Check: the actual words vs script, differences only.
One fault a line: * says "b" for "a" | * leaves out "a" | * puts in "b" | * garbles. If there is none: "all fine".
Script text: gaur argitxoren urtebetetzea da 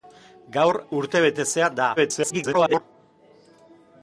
* leaves out "argitxoren"
* garbles